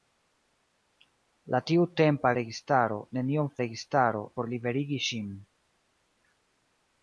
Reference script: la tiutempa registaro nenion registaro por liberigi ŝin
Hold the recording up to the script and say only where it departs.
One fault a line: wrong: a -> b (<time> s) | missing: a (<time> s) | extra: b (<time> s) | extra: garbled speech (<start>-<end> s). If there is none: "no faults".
no faults